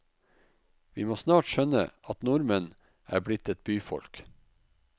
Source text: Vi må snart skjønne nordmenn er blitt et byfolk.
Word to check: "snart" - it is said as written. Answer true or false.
true